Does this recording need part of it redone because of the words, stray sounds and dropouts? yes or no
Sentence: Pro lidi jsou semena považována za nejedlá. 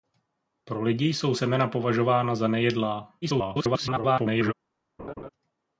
yes